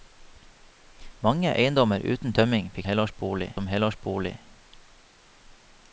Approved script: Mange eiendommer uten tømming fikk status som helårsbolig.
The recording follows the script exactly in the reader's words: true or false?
false